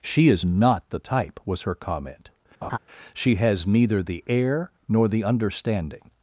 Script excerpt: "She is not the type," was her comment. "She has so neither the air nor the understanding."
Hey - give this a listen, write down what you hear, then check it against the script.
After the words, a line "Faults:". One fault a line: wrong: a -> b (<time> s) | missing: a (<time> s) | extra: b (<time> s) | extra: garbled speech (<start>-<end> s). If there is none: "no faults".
"She is not the type," was her comment. "She has neither the air nor the understanding."
Faults:
missing: so (3.6 s)